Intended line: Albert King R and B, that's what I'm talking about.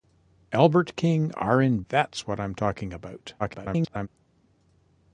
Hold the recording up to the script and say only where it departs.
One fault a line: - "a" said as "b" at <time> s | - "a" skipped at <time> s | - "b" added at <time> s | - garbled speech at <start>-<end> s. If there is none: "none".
- "B" skipped at 1.8 s
- garbled speech at 3.4-4.1 s